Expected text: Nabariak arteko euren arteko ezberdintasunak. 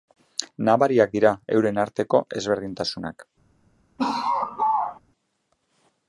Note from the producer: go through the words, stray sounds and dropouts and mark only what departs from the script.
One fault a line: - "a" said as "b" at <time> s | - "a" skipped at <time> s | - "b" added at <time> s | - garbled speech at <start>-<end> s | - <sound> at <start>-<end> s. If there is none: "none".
- "arteko" said as "dira" at 1.2 s
- laugh at 4.0-5.0 s